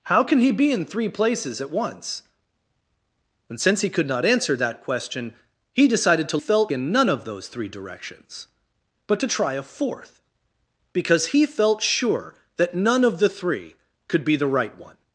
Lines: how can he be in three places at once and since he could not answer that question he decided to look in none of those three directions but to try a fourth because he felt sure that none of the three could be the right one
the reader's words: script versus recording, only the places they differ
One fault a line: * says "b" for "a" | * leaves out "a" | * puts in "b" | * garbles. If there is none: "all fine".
* says "felt" for "look"